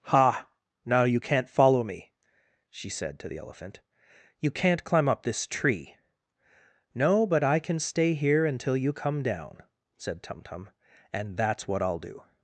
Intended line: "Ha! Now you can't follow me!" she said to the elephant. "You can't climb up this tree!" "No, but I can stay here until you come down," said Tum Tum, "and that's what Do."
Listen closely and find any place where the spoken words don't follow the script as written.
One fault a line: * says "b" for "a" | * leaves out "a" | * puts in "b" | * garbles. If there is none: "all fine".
* puts in "I'll"